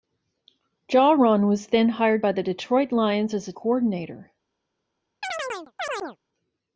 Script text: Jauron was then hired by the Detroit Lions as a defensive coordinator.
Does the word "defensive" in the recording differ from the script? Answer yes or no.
yes